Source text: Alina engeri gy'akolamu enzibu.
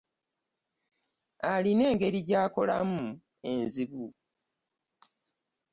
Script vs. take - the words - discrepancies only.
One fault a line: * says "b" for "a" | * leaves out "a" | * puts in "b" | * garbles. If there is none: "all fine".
all fine